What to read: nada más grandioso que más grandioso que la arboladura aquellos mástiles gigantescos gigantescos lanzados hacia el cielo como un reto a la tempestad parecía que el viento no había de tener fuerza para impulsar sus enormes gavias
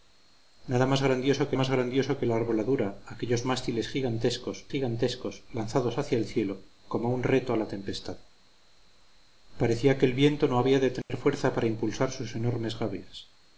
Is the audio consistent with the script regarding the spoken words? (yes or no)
yes